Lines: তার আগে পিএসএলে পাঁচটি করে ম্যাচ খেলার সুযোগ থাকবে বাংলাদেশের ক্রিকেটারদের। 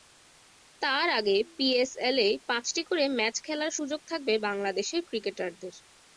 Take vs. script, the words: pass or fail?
pass